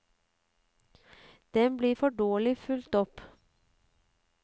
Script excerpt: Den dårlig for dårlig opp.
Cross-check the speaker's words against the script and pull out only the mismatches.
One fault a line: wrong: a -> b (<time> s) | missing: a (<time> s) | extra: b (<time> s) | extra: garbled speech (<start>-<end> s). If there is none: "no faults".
wrong: dårlig -> blir (1.8 s)
extra: fulgt (2.6 s)